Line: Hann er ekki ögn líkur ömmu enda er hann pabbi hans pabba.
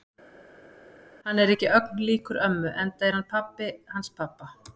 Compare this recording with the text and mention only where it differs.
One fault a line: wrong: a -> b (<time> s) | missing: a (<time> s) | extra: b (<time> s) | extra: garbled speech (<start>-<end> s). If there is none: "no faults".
no faults